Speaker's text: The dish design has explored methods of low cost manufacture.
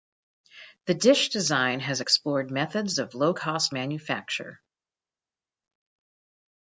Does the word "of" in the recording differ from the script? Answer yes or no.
no